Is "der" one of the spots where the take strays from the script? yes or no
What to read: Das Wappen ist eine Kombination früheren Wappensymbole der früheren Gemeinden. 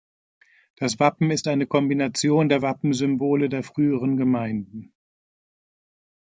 no